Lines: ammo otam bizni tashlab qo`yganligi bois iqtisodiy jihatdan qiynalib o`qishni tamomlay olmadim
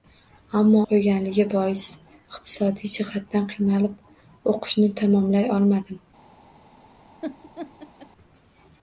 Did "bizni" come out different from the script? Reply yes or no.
yes